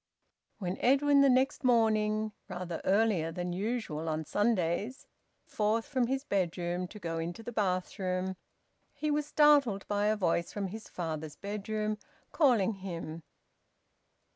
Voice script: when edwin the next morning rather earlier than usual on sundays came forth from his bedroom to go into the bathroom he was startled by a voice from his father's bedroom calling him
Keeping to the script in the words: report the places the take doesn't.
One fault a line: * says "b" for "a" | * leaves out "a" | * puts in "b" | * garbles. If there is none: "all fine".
* leaves out "came"